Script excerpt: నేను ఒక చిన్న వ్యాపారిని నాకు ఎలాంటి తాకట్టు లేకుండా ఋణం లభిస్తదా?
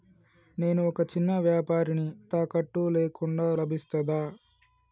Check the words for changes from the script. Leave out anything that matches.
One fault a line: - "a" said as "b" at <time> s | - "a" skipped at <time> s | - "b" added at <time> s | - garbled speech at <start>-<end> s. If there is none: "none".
- "నాకు ఎలాంటి" skipped at 2.0 s
- "ఋణం" skipped at 3.5 s